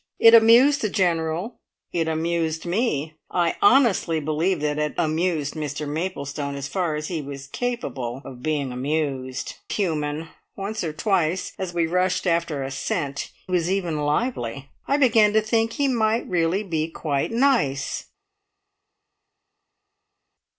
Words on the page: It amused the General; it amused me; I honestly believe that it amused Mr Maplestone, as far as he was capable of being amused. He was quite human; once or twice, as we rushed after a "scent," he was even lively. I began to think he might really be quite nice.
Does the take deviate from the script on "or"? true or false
false